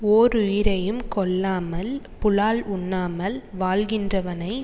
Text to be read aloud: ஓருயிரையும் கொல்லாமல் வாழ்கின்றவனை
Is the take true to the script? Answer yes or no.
no